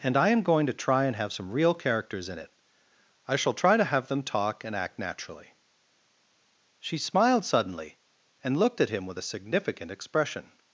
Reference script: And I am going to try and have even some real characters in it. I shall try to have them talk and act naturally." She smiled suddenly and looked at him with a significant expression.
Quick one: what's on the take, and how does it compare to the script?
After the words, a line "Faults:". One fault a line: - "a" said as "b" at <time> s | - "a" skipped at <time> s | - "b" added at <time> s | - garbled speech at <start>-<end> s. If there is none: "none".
And I am going to try and have some real characters in it. I shall try to have them talk and act naturally." She smiled suddenly and looked at him with a significant expression.
Faults:
- "even" skipped at 1.3 s